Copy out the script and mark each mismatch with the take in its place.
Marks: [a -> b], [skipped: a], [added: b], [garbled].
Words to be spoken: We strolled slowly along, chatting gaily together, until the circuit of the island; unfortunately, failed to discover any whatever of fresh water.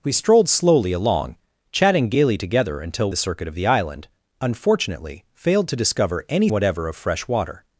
We strolled slowly along, chatting gaily together, until the circuit of the island; unfortunately, failed to discover any whatever of fresh water.